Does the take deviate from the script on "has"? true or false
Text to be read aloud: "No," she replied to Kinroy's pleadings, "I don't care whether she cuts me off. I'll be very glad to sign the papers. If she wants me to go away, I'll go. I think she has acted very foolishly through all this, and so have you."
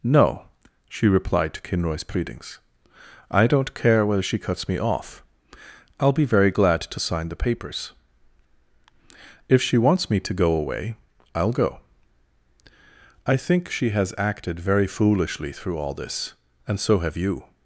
false